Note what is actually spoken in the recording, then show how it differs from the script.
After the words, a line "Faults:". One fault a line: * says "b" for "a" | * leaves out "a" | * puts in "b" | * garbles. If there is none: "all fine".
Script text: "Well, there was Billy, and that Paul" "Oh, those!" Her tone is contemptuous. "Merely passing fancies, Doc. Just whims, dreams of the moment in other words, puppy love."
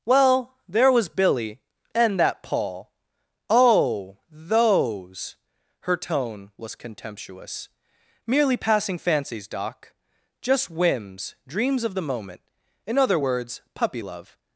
"Well, there was Billy, and that Paul" "Oh, those!" Her tone was contemptuous. "Merely passing fancies, Doc. Just whims, dreams of the moment in other words, puppy love."
Faults:
* says "was" for "is"